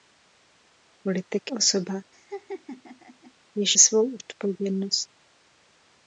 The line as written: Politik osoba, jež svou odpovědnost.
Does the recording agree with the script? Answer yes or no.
yes